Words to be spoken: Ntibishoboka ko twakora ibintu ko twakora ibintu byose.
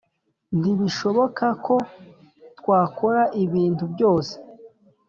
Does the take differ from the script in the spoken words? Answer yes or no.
yes